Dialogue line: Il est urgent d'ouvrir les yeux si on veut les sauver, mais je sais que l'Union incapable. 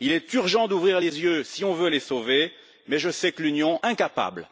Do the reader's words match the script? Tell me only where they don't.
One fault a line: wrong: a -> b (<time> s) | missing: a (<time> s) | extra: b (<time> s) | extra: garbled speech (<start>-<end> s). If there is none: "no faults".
no faults